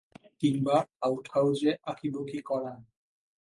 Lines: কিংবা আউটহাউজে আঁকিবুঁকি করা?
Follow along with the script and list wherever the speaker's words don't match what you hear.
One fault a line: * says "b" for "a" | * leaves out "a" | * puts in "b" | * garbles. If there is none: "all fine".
all fine